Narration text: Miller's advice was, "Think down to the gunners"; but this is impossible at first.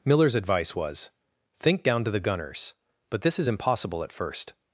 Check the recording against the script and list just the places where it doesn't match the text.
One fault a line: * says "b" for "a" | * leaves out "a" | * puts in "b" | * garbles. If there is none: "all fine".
all fine